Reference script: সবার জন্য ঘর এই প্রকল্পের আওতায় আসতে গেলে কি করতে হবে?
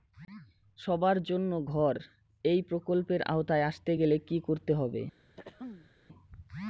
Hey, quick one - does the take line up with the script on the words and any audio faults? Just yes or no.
no